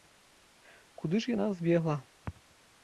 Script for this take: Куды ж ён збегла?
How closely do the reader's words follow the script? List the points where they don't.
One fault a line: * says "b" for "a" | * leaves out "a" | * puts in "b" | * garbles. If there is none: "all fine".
* says "яна" for "ён"